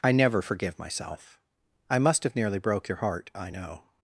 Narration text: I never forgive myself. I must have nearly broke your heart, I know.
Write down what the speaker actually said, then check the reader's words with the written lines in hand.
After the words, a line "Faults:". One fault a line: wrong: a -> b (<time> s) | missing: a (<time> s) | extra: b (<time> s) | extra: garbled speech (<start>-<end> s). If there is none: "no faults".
I never forgive myself. I must have nearly broke your heart, I know.
Faults:
no faults